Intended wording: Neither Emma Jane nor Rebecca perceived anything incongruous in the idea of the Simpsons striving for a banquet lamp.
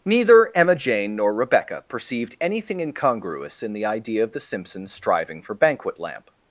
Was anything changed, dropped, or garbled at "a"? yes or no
yes